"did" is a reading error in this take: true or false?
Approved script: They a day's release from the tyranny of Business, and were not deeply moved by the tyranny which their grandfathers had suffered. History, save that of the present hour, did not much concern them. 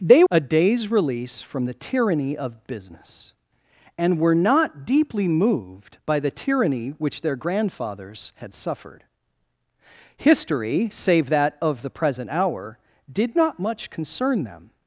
false